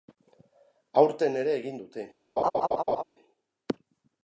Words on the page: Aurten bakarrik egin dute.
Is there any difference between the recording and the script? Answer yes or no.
yes